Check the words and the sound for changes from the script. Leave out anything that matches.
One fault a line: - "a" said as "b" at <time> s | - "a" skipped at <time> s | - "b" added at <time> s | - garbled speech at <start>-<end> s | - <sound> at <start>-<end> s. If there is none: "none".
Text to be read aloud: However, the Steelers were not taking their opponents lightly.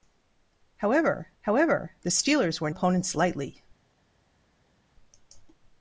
- "however" added at 1.4 s
- "not taking their" skipped at 2.7 s